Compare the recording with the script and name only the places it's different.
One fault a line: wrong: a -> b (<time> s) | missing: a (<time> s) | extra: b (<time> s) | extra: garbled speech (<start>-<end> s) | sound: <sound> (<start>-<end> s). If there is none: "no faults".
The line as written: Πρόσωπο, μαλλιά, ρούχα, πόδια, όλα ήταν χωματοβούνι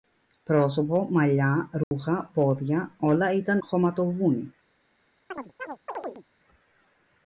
sound: dropout (1.8-1.9 s)
sound: chirp (5.3-6.2 s)